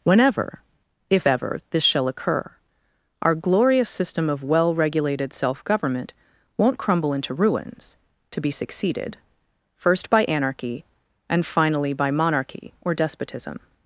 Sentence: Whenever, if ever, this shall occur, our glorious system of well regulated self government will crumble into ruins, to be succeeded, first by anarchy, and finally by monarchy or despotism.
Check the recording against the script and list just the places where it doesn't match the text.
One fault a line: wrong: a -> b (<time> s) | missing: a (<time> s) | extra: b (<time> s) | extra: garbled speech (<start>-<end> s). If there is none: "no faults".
wrong: will -> won't (6.6 s)